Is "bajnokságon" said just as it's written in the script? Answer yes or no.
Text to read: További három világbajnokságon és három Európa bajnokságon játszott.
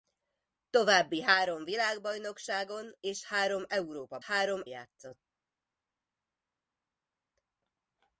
no